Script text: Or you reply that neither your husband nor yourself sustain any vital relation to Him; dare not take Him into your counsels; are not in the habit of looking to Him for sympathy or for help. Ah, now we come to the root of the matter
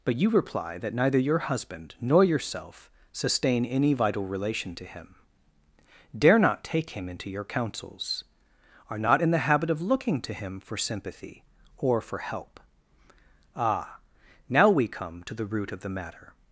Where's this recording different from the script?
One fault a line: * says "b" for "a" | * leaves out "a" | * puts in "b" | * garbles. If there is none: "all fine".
* says "But" for "Or"